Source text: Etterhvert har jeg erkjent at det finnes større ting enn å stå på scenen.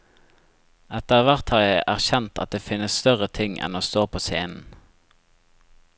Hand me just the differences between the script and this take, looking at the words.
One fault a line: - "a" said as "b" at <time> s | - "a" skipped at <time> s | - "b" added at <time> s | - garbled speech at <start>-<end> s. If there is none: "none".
none